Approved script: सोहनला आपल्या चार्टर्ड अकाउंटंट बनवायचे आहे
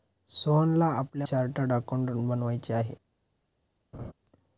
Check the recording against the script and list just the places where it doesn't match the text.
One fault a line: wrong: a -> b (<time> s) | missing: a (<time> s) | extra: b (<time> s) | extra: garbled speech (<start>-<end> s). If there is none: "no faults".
no faults